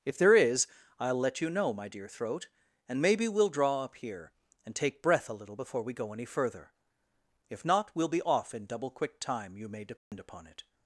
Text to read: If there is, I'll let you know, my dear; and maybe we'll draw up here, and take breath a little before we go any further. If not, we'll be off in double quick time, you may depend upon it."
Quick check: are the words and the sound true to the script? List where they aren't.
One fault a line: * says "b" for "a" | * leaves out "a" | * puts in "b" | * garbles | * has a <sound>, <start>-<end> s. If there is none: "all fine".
* puts in "throat"
* has a dropout, 10.0-10.1 s